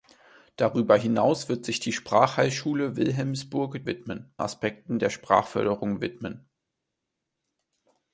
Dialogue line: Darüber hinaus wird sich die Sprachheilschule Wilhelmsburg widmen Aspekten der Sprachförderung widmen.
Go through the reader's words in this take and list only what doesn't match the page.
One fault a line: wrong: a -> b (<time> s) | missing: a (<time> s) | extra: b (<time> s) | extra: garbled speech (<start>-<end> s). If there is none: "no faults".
no faults